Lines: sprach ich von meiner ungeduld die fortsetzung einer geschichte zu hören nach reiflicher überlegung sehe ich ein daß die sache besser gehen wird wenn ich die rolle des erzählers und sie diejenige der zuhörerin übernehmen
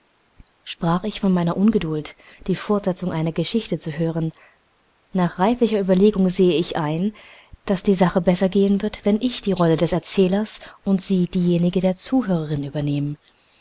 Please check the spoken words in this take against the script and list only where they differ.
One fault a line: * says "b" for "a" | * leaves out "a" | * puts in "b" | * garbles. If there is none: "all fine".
all fine